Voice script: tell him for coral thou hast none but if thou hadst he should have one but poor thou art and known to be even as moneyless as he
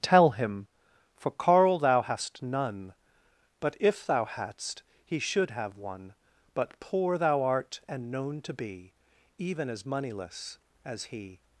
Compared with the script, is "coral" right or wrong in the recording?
wrong